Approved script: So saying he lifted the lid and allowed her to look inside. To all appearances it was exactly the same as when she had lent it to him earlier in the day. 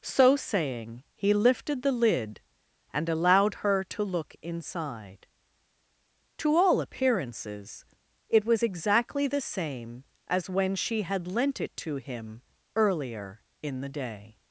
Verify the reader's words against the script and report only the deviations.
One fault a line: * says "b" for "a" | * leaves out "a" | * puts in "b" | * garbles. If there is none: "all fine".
all fine